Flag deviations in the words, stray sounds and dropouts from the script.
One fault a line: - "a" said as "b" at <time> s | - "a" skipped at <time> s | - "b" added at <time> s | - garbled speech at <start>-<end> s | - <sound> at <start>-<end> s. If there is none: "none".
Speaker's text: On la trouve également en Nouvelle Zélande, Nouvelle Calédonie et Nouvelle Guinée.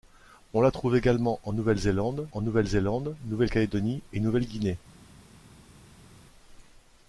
- "en Nouvelle Zélande" added at 2.3 s